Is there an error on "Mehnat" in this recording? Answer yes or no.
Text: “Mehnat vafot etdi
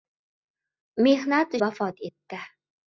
no